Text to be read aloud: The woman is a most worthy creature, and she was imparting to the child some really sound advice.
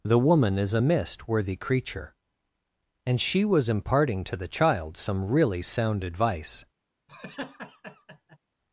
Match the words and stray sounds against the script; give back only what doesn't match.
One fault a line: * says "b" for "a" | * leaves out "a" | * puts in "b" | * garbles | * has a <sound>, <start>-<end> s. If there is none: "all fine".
* says "mist" for "most"
* has a laugh, 7.1-8.4 s